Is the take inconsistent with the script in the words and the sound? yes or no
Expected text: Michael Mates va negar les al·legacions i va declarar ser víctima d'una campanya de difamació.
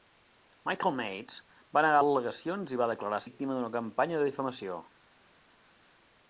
yes